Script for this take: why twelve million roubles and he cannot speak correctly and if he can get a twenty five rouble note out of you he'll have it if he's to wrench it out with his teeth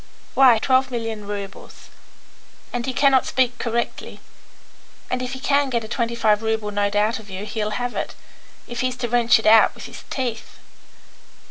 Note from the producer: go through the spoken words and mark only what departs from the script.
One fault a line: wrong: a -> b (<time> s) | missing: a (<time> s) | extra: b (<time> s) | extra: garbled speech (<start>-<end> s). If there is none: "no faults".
no faults